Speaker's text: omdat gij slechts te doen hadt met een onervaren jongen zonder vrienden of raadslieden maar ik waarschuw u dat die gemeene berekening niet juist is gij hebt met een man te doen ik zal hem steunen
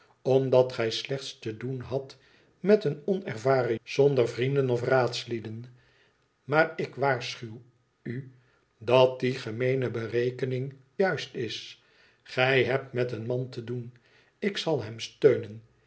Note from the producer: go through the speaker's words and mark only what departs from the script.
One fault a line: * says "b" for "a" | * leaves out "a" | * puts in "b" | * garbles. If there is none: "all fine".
* leaves out "jongen"
* leaves out "niet"